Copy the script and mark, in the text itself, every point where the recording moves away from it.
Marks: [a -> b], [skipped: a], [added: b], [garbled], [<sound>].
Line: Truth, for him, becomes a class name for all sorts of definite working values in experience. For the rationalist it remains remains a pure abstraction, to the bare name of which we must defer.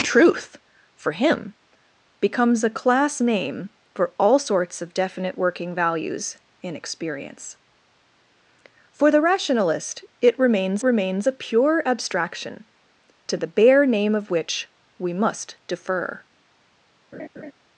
Truth, for him, becomes a class name for all sorts of definite working values in experience. For the rationalist it remains remains a pure abstraction, to the bare name of which we must defer. [laugh]